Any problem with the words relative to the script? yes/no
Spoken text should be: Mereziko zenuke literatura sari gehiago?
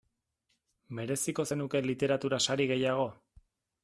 no